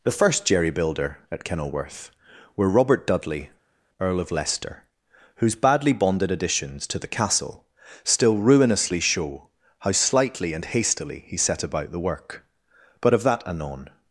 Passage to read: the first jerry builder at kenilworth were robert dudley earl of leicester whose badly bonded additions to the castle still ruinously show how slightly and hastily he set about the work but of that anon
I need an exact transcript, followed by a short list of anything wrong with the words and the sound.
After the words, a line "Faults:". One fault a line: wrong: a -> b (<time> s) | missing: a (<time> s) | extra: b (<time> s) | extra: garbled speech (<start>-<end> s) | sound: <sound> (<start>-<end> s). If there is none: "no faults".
the first jerry builder at kenilworth were robert dudley earl of leicester whose badly bonded additions to the castle still ruinously show how slightly and hastily he set about the work but of that anon
Faults:
no faults